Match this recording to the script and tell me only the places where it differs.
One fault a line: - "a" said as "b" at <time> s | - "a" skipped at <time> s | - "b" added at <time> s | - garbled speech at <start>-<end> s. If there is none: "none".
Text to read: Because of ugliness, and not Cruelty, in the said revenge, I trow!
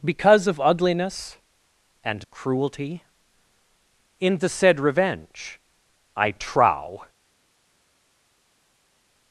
- "not" skipped at 2.3 s